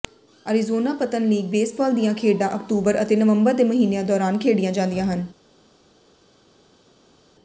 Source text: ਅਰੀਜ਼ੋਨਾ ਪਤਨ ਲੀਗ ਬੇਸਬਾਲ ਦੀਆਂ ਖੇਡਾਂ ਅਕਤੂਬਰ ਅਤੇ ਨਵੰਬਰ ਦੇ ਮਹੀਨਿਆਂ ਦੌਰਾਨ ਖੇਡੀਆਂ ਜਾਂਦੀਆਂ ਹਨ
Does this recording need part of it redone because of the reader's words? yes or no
no